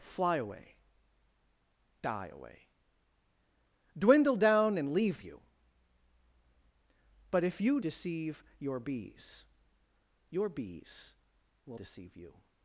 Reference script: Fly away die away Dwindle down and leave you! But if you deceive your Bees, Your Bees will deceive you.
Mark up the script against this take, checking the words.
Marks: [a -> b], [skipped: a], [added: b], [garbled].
Fly away die away Dwindle down and leave you! But if you deceive your Bees, Your Bees will deceive you.